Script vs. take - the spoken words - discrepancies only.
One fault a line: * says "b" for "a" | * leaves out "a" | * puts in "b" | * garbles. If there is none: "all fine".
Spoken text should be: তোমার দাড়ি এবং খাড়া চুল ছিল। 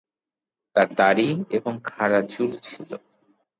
* says "তার" for "তোমার"